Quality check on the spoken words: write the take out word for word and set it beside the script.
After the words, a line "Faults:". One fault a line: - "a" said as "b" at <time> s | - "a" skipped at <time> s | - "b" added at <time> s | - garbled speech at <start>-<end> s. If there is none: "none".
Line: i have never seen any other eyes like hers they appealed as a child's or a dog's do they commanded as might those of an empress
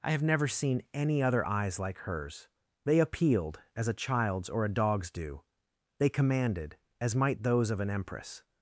i have never seen any other eyes like hers they appealed as a child's or a dog's do they commanded as might those of an empress
Faults:
none